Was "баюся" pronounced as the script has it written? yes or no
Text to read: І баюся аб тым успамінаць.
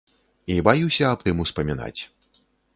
yes